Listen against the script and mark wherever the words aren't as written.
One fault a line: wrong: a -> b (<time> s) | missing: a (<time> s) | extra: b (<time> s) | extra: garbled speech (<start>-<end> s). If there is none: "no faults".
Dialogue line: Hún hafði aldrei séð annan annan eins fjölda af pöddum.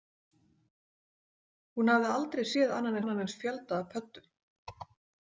no faults